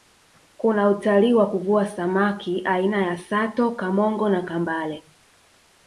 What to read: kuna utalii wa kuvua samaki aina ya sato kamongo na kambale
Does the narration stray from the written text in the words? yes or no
no